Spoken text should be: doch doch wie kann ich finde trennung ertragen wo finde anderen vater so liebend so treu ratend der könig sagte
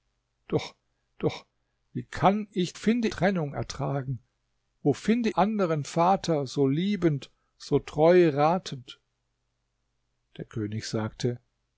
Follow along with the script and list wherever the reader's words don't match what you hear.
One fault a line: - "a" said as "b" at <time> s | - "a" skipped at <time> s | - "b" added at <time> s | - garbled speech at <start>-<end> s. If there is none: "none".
none